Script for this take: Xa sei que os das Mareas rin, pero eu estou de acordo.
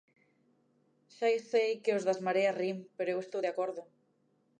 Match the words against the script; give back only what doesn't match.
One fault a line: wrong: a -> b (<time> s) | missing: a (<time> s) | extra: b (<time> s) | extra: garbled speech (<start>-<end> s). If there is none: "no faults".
no faults